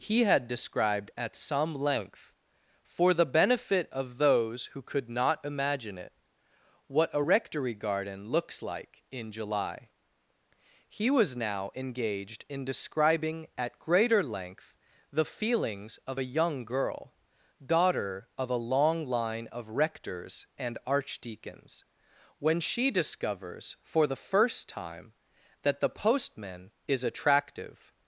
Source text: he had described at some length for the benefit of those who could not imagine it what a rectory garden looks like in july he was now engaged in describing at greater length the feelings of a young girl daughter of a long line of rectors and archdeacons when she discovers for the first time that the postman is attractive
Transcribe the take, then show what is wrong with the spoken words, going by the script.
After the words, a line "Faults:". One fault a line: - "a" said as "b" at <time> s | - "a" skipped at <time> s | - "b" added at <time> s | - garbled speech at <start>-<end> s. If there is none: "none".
he had described at some length for the benefit of those who could not imagine it what a rectory garden looks like in july he was now engaged in describing at greater length the feelings of a young girl daughter of a long line of rectors and archdeacons when she discovers for the first time that the postman is attractive
Faults:
none